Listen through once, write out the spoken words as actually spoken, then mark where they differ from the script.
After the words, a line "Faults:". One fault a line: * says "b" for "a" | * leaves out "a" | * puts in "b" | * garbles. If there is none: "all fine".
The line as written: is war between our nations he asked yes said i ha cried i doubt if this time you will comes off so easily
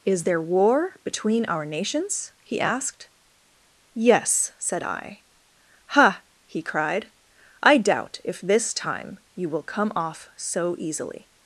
is there war between our nations he asked yes said i ha he cried i doubt if this time you will come off so easily
Faults:
* puts in "there"
* puts in "he"
* says "come" for "comes"